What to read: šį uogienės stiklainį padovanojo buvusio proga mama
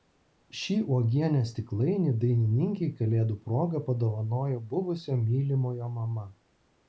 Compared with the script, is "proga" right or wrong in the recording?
wrong